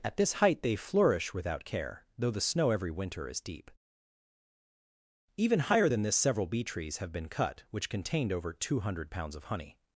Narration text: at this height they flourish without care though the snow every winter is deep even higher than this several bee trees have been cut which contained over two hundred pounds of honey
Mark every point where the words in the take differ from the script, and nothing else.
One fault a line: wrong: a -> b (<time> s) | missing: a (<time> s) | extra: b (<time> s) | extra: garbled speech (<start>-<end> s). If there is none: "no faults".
no faults